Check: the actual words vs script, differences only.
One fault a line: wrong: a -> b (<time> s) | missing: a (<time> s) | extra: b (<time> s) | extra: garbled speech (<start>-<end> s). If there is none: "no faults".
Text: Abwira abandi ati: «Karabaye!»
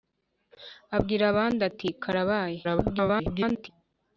extra: garbled speech (2.6-3.7 s)